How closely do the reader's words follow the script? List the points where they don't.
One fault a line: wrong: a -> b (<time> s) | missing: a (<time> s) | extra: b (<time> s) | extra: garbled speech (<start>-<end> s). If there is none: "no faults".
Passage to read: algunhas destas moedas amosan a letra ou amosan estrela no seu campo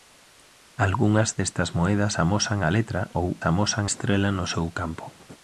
no faults